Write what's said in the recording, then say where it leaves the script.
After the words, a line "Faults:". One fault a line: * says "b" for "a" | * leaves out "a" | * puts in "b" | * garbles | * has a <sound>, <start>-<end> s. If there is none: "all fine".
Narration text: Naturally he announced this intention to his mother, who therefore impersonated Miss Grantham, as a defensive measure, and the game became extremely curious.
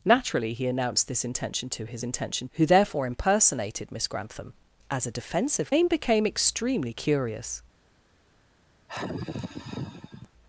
Naturally he announced this intention to his intention, who therefore impersonated Miss Grantham, as a defensive game became extremely curious.
Faults:
* says "intention" for "mother"
* leaves out "measure and the"
* has a sigh, 8.9-10.3 s